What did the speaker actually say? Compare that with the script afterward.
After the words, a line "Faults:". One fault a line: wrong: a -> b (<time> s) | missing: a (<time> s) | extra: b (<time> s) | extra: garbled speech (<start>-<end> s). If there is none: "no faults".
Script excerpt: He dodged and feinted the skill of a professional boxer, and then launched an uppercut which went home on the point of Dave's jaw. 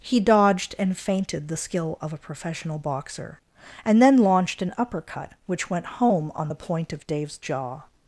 He dodged and feinted the skill of a professional boxer, and then launched an uppercut which went home on the point of Dave's jaw.
Faults:
no faults